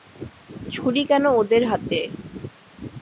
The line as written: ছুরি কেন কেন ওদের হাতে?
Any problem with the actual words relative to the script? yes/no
yes